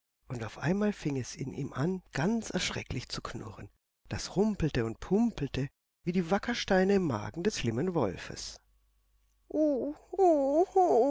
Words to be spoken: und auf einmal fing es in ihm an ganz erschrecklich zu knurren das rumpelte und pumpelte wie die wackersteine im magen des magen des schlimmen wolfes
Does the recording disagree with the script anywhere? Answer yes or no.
yes